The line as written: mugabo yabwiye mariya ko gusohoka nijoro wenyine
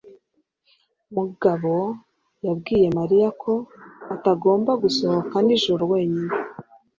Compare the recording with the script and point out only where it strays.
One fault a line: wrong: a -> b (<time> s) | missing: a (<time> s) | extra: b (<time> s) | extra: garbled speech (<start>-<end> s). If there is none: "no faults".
extra: atagomba (4.1 s)